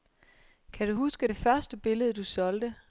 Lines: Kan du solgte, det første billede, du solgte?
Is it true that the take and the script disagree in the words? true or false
true